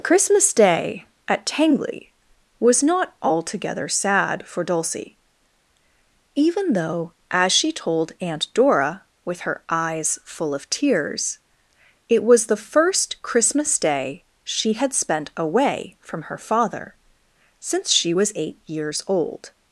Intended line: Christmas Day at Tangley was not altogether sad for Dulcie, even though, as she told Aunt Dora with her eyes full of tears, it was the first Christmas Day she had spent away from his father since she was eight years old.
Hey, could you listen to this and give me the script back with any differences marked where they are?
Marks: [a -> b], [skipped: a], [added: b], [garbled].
Christmas Day at Tangley was not altogether sad for Dulcie, even though, as she told Aunt Dora with her eyes full of tears, it was the first Christmas Day she had spent away from [his -> her] father since she was eight years old.